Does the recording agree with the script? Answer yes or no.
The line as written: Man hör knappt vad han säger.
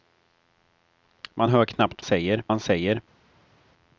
no